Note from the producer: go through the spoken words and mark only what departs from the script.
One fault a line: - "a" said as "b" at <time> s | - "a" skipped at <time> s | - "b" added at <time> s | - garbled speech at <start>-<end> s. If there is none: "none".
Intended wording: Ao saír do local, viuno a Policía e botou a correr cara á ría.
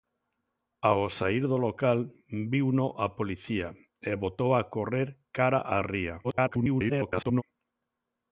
- garbled speech at 6.2-7.4 s